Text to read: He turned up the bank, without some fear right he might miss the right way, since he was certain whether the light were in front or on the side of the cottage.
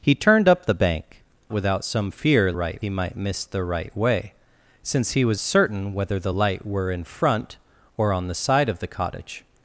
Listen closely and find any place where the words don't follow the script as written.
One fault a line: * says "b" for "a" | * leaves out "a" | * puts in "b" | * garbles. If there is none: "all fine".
all fine